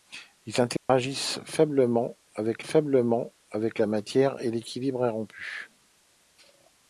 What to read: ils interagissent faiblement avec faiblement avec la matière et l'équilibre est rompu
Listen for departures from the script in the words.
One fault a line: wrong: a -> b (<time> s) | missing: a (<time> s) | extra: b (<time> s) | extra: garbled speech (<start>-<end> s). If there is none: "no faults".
no faults